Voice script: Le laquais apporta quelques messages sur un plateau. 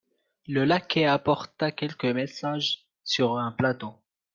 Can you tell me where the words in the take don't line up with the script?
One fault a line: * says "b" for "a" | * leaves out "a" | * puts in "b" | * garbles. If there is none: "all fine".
all fine